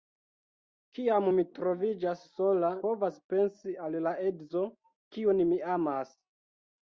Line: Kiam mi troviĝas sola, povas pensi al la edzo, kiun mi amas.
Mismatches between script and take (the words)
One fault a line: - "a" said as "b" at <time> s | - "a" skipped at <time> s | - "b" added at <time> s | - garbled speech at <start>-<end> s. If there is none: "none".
none